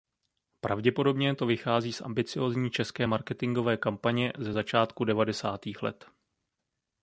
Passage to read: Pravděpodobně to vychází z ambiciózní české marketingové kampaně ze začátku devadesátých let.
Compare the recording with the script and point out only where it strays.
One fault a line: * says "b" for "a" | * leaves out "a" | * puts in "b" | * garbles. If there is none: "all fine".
all fine